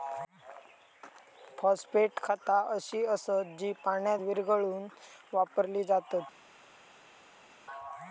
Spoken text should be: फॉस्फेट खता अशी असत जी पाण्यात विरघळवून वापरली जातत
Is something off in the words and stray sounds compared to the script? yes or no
no